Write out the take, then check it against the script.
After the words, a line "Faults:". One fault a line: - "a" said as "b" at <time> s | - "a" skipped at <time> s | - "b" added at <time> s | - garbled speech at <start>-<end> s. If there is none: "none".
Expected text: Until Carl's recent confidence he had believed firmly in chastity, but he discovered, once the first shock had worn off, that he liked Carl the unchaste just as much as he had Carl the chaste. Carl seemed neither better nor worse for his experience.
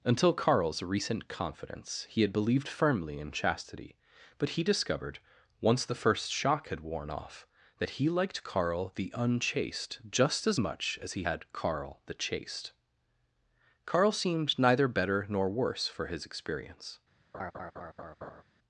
Until Carl's recent confidence he had believed firmly in chastity, but he discovered, once the first shock had worn off, that he liked Carl the unchaste just as much as he had Carl the chaste. Carl seemed neither better nor worse for his experience.
Faults:
none